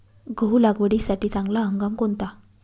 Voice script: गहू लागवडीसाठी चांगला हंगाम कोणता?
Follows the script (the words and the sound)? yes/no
yes